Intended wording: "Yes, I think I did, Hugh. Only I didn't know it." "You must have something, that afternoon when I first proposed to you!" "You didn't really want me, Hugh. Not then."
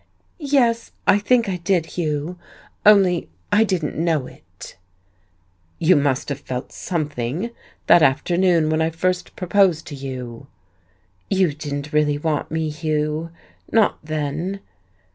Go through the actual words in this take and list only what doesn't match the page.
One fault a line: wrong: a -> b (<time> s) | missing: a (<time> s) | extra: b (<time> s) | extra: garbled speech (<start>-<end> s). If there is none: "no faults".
extra: felt (6.4 s)